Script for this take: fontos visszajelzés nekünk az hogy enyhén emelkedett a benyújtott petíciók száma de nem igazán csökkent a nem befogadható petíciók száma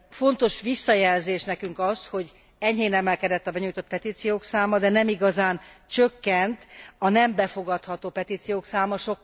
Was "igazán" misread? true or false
false